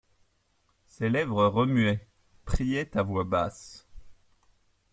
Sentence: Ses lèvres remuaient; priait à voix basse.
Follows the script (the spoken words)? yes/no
yes